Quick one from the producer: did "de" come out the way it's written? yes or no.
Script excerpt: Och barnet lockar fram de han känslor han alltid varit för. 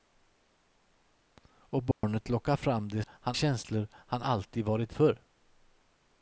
yes